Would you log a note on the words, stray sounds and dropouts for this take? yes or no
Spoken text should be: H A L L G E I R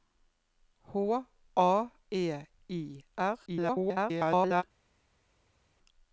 yes